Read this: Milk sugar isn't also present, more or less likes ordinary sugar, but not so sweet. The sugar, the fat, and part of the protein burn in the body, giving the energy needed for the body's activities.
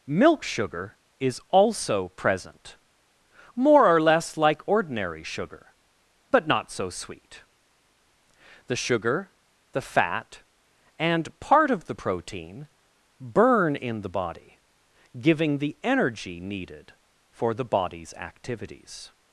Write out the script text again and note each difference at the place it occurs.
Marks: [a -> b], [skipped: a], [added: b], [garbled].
Milk sugar [isn't -> is] also present, more or less [likes -> like] ordinary sugar, but not so sweet. The sugar, the fat, and part of the protein burn in the body, giving the energy needed for the body's activities.